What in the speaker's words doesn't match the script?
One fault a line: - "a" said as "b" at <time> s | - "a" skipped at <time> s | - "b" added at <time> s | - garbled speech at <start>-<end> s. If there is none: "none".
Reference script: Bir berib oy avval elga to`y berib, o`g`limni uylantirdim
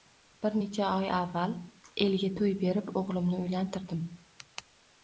- "berib" said as "necha" at 0.6 s